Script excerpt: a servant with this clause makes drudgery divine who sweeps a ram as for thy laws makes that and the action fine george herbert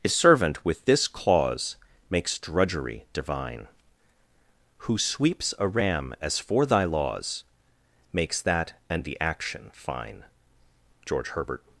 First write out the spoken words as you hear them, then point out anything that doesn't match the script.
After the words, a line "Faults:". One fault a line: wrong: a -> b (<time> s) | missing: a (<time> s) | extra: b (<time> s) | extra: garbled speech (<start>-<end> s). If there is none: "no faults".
a servant with this clause makes drudgery divine who sweeps a ram as for thy laws makes that and the action fine george herbert
Faults:
no faults